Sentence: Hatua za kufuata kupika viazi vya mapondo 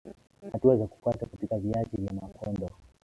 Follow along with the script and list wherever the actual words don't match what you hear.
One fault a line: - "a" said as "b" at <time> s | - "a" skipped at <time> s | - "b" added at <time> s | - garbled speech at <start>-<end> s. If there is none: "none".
none